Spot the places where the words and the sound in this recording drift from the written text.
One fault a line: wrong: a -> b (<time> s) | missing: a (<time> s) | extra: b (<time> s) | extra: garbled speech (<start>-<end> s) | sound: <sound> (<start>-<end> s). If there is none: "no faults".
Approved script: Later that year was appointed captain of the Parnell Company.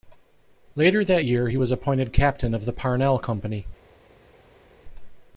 extra: he (1.5 s)